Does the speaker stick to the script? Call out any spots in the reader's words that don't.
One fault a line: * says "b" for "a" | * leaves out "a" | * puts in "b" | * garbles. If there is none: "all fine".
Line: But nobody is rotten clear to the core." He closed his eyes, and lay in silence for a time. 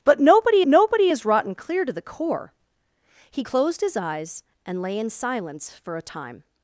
* puts in "nobody"